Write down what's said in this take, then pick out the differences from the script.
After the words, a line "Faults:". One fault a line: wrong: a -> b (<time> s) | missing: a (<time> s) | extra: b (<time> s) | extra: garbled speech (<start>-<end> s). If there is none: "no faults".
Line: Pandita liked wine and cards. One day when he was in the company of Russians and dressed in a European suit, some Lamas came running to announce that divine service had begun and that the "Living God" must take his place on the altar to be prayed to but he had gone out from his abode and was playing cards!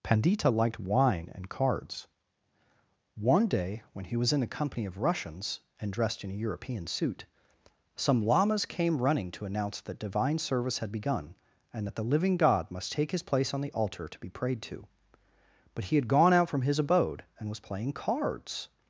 Pandita liked wine and cards. One day when he was in the company of Russians and dressed in a European suit, some Lamas came running to announce that divine service had begun and that the "Living God" must take his place on the altar to be prayed to but he had gone out from his abode and was playing cards!
Faults:
no faults